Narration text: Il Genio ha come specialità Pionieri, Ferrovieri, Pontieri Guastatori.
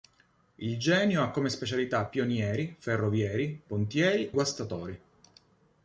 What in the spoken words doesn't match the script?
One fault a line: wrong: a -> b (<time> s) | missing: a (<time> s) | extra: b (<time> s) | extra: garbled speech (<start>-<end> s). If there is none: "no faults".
no faults